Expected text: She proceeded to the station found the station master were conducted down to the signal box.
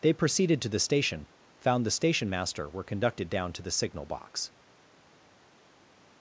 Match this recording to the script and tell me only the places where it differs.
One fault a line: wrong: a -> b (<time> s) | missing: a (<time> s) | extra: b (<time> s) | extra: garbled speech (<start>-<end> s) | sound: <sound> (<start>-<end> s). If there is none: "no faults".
wrong: She -> They (0.0 s)